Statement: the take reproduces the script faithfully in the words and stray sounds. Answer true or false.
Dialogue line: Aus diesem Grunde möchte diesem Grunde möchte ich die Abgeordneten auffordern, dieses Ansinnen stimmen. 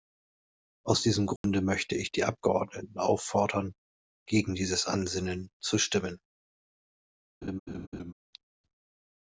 false